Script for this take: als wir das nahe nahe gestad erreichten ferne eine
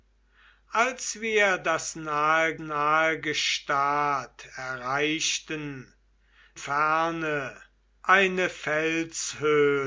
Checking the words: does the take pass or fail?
pass